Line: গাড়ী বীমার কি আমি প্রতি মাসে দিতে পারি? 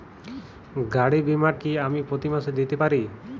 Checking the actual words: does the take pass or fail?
pass